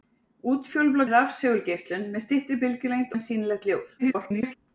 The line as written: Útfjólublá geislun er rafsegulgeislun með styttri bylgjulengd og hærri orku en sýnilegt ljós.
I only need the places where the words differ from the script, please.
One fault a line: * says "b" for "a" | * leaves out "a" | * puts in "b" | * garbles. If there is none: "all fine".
* leaves out "geislun"
* leaves out "og hærri orku"
* garbles